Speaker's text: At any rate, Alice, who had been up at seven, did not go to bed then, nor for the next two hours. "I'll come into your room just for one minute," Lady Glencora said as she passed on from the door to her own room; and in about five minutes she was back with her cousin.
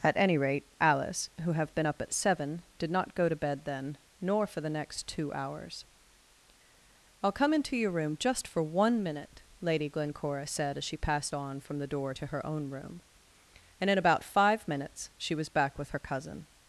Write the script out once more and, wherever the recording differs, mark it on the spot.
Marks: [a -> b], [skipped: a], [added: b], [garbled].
At any rate, Alice, who [had -> have] been up at seven, did not go to bed then, nor for the next two hours. "I'll come into your room just for one minute," Lady Glencora said as she passed on from the door to her own room; and in about five minutes she was back with her cousin.